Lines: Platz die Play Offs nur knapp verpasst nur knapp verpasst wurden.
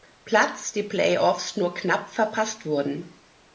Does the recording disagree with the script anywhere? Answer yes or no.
yes